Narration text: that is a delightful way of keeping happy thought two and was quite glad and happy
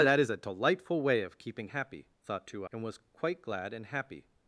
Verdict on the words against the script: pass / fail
pass